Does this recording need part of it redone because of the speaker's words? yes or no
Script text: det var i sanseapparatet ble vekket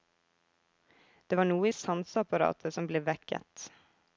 yes